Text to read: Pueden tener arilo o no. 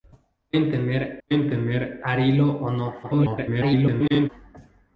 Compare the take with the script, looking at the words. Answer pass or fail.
fail